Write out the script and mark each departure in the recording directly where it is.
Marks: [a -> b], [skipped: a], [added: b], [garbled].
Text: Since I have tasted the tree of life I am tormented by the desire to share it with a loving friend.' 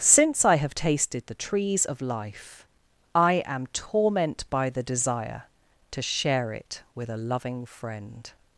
Since I have tasted the [tree -> trees] of life I am [tormented -> torment] by the desire to share it with a loving friend.'